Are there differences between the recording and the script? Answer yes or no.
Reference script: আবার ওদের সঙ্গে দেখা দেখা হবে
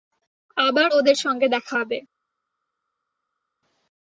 yes